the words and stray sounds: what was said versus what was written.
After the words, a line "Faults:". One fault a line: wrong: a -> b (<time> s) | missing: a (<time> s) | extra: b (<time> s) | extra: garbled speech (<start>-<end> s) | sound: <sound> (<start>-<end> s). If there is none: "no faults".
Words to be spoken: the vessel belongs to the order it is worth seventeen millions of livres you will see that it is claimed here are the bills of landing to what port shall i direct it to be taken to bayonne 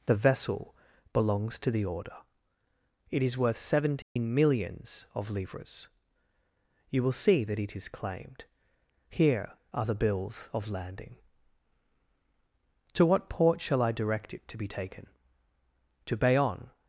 the vessel belongs to the order it is worth seventeen millions of livres you will see that it is claimed here are the bills of landing to what port shall i direct it to be taken to bayonne
Faults:
sound: dropout (4.0-4.2 s)